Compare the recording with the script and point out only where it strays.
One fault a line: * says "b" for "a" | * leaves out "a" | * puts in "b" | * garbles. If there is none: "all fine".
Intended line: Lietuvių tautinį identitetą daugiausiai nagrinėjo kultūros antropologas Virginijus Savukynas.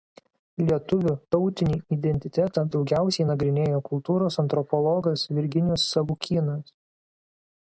all fine